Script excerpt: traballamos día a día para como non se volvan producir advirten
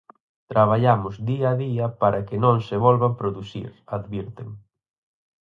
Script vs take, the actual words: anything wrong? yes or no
yes